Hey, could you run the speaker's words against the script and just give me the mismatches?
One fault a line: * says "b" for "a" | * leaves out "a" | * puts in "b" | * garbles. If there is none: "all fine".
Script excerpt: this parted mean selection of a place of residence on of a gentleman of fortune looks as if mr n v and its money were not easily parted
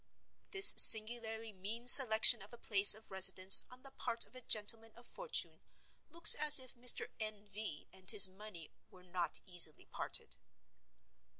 * says "singularly" for "parted"
* puts in "the part"
* says "his" for "its"